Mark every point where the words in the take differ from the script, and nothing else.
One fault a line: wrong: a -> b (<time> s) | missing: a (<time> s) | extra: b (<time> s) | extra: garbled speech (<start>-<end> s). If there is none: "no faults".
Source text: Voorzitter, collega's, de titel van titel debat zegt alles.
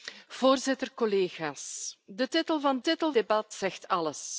no faults